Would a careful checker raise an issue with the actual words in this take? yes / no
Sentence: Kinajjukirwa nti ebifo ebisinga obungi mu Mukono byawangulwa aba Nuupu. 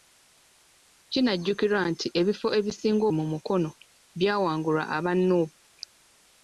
yes